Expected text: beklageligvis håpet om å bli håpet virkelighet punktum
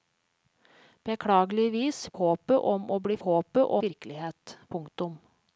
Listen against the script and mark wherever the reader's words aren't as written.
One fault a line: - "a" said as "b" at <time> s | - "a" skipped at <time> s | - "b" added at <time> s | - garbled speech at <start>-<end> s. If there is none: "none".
none